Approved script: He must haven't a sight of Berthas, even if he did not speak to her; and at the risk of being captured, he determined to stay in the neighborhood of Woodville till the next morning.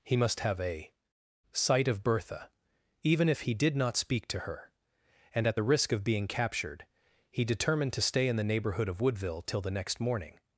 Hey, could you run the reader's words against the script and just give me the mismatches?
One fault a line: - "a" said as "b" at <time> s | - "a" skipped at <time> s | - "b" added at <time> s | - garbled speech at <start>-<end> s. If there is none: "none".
- "haven't" said as "have" at 0.4 s
- "Berthas" said as "Bertha" at 2.0 s